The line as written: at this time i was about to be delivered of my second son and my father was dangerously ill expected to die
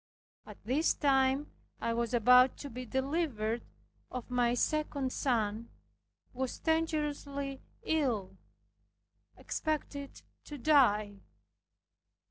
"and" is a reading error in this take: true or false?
true